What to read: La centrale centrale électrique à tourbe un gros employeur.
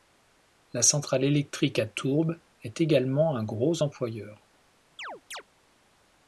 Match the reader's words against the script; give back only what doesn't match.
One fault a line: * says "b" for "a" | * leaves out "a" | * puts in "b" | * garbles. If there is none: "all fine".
* leaves out "centrale"
* puts in "est également"